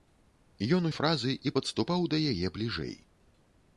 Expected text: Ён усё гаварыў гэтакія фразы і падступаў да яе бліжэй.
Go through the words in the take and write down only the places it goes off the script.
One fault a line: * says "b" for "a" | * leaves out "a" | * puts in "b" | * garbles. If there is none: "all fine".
* leaves out "усё гаварыў гэтакія"